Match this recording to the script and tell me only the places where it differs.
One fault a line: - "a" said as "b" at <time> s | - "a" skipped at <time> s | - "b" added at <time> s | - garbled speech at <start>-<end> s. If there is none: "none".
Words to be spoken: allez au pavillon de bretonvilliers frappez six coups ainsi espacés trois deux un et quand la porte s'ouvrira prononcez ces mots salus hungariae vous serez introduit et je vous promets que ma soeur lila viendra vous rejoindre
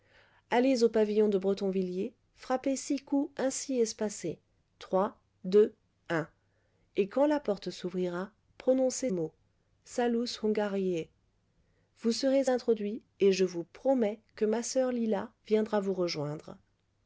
- "ces" skipped at 9.1 s